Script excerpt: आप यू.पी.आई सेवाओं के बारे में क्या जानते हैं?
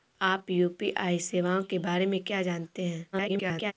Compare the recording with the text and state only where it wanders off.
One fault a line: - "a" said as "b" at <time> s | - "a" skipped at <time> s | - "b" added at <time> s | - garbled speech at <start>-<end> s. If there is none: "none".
- garbled speech at 3.1-3.7 s